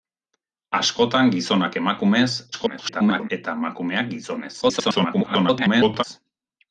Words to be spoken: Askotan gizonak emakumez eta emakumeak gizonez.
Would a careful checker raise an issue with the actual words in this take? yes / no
yes